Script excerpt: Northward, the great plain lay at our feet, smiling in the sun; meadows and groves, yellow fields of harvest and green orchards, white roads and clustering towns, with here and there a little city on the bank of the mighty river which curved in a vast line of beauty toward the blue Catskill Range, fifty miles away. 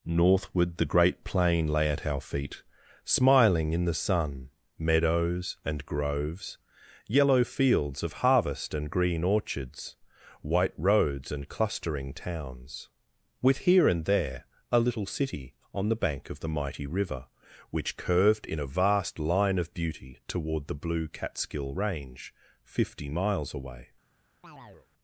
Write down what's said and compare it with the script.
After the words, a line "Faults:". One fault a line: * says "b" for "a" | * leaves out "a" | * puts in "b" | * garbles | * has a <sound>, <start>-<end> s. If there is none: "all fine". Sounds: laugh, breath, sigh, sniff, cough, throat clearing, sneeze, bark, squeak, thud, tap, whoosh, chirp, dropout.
Northward, the great plain lay at our feet, smiling in the sun; meadows and groves, yellow fields of harvest and green orchards, white roads and clustering towns, with here and there a little city on the bank of the mighty river which curved in a vast line of beauty toward the blue Catskill Range, fifty miles away.
Faults:
* has a chirp, 24.4-24.9 s